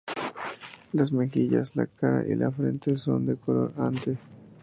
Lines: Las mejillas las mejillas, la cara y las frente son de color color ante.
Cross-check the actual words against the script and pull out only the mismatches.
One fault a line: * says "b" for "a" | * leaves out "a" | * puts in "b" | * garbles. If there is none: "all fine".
* leaves out "las mejillas"
* says "la" for "las"
* leaves out "color"